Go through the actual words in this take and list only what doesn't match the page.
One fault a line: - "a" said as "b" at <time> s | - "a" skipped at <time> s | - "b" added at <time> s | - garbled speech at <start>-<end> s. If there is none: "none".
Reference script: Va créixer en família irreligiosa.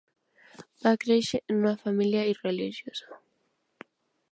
- "una" added at 1.6 s